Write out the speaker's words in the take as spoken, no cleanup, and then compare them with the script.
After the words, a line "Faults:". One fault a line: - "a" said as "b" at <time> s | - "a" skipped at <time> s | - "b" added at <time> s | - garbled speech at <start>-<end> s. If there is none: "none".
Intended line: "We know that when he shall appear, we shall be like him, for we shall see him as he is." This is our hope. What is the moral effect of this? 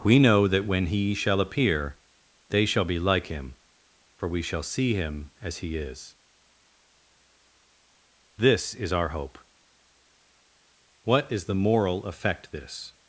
"We know that when he shall appear, they shall be like him, for we shall see him as he is." This is our hope. What is the moral effect this?
Faults:
- "we" said as "they" at 2.5 s
- "of" skipped at 12.5 s